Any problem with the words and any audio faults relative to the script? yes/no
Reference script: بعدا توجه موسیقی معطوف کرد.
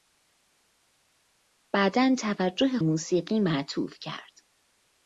no